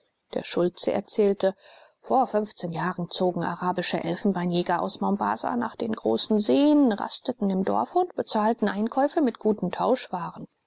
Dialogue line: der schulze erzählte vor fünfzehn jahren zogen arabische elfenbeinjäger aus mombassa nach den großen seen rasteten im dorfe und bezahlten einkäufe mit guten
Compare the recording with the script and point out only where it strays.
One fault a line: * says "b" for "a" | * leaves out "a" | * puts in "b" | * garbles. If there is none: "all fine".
all fine